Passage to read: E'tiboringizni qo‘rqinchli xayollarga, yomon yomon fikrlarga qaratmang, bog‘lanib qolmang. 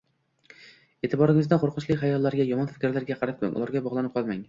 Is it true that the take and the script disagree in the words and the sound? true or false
true